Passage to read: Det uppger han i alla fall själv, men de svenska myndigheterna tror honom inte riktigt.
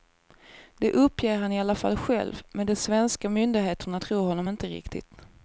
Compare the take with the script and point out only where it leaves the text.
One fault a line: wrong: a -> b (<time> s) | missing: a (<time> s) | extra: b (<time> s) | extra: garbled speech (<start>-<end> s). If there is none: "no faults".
no faults